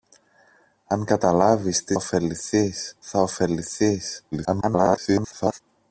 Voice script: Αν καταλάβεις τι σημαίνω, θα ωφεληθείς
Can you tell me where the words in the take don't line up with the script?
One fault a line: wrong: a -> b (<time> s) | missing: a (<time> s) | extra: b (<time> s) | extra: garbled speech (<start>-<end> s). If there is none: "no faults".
wrong: σημαίνω -> ωφεληθείς (1.9 s)
extra: garbled speech (4.3-5.6 s)